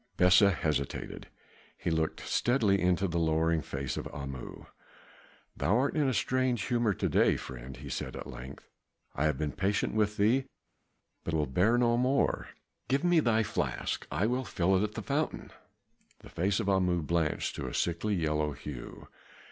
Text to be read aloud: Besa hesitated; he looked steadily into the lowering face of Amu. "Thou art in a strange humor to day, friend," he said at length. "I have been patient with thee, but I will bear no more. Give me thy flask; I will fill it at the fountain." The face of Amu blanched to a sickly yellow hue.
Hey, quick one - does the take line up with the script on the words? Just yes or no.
no